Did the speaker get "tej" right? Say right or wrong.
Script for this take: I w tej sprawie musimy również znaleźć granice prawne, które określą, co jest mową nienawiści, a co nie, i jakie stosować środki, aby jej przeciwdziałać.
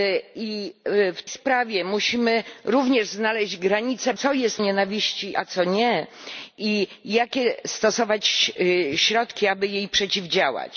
wrong